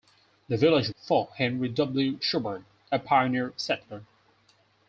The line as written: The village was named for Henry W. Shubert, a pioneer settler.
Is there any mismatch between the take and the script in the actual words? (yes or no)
yes